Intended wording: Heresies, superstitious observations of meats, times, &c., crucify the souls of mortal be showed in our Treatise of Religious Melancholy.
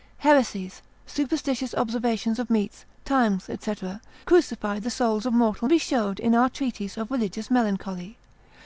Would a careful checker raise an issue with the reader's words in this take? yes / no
no